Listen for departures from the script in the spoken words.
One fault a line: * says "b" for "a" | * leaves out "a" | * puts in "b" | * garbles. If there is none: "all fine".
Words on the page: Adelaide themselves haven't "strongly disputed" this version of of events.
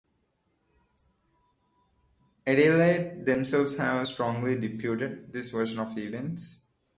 * says "have" for "haven't"
* leaves out "of"